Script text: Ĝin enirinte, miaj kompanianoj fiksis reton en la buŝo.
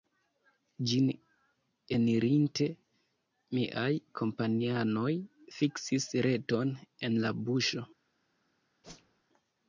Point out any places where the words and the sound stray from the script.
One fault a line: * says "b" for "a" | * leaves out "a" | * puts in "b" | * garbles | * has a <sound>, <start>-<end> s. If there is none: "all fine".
* has a whoosh, 8.8-9.2 s